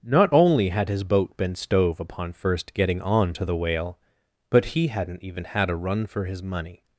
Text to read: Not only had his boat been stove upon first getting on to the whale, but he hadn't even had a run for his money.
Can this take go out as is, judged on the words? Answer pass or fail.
pass